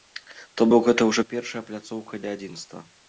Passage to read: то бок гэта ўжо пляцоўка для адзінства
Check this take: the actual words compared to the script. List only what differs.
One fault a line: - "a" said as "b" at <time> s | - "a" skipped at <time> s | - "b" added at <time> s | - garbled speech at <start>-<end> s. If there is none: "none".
- "першая" added at 1.3 s